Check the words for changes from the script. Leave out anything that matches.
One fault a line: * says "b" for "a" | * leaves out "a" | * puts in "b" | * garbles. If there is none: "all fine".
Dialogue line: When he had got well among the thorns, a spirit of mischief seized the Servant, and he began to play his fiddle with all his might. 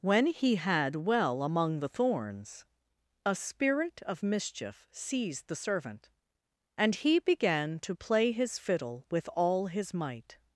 * leaves out "got"